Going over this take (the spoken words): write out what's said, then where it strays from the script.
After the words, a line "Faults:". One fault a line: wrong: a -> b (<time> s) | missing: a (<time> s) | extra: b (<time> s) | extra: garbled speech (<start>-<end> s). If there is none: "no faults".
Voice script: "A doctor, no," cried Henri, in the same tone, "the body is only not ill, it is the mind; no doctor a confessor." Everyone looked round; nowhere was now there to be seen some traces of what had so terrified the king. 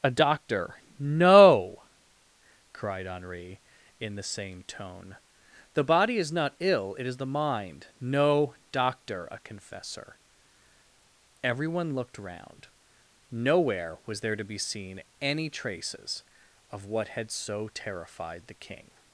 "A doctor, no," cried Henri, in the same tone, "the body is not ill, it is the mind; no doctor a confessor." Everyone looked round; nowhere was there to be seen any traces of what had so terrified the king.
Faults:
missing: only (6.3 s)
missing: now (14.2 s)
wrong: some -> any (15.2 s)